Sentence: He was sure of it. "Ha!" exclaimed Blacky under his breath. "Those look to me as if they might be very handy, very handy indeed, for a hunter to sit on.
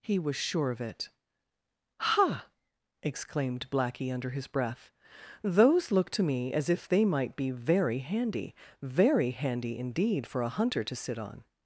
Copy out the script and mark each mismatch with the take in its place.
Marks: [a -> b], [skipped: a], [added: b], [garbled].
He was sure of it. "Ha!" exclaimed Blacky under his breath. "Those look to me as if they might be very handy, very handy indeed, for a hunter to sit on.